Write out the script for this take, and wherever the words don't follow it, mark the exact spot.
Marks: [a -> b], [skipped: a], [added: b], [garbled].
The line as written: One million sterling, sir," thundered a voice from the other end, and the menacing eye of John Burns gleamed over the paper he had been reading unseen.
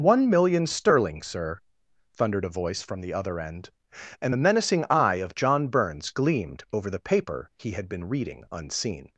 One million sterling, sir," thundered a voice from the other end, and the menacing eye of John Burns gleamed over the paper he had been reading unseen.